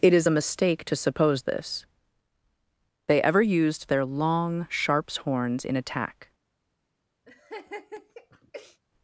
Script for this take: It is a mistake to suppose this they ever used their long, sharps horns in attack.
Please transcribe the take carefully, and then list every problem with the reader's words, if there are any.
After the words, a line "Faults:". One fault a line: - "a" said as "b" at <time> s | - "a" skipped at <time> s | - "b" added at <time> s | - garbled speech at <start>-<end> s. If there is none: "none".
It is a mistake to suppose this they ever used their long, sharps horns in attack.
Faults:
none